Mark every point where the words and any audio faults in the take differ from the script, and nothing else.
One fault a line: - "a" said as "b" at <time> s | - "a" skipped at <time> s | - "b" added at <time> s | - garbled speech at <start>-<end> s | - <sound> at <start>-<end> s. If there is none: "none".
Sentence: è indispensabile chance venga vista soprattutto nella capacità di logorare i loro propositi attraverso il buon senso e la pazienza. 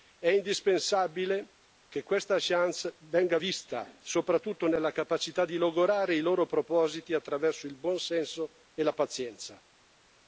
- "che questa" added at 1.9 s